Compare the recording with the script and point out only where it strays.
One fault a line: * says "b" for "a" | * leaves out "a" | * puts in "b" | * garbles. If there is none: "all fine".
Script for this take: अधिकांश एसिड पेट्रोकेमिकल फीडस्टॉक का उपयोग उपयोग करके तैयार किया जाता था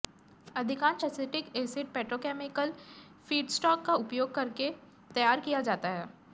* puts in "एसिटिक"
* leaves out "उपयोग"
* says "है" for "था"